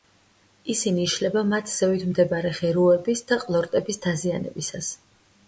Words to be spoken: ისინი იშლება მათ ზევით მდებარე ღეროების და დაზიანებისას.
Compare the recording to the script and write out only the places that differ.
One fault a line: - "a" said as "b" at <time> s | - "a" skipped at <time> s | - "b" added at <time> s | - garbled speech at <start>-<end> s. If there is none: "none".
- "ყლორტების" added at 3.4 s